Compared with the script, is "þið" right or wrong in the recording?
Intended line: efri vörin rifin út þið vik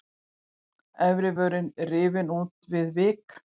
wrong